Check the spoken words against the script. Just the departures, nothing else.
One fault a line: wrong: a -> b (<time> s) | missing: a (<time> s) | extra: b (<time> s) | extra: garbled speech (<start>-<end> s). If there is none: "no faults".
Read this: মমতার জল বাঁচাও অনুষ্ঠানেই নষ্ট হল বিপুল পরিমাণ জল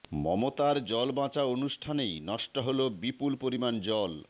no faults